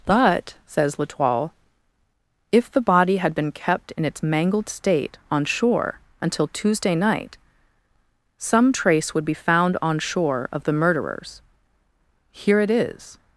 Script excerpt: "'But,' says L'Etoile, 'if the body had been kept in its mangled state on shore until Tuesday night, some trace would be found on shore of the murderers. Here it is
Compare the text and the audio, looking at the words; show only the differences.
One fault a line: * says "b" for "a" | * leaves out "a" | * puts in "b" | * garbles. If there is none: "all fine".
all fine